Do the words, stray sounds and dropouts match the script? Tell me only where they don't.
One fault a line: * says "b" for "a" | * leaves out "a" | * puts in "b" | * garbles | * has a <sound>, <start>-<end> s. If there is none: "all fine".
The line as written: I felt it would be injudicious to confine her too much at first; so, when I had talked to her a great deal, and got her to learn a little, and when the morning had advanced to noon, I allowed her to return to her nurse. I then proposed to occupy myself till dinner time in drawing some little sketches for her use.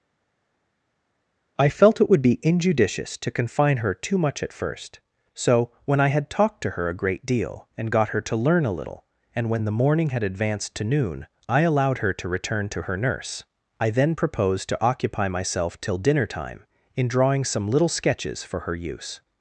all fine